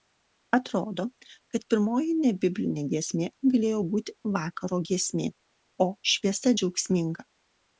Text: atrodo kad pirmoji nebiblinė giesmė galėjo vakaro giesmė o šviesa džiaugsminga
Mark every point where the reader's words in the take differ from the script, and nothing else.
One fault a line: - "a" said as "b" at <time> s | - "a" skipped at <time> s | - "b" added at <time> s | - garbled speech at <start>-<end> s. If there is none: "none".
- "būti" added at 3.9 s